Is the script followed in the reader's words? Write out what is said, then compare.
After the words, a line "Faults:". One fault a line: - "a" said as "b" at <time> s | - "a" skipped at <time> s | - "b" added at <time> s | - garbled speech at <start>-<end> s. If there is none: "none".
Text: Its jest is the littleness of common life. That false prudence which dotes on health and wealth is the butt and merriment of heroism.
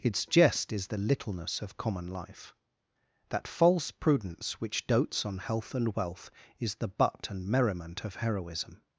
Its jest is the littleness of common life. That false prudence which dotes on health and wealth is the butt and merriment of heroism.
Faults:
none